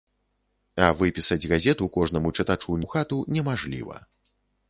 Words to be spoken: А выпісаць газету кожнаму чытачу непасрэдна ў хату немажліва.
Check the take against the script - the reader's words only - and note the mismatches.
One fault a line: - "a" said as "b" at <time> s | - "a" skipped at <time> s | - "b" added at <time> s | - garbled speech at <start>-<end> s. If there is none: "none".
- "непасрэдна" skipped at 2.8 s